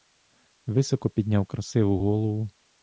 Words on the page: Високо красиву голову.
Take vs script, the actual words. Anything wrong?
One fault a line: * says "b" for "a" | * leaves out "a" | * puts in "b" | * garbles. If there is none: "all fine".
* puts in "підняв"